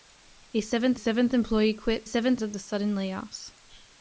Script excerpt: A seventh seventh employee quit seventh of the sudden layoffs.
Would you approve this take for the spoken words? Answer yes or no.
yes